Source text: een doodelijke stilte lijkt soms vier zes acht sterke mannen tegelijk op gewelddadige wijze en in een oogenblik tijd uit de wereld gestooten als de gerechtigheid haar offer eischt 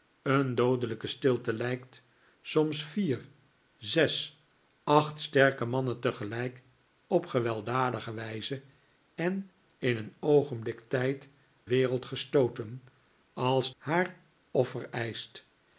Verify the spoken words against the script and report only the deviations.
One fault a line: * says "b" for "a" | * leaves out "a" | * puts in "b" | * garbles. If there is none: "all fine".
* leaves out "uit de"
* leaves out "de gerechtigheid"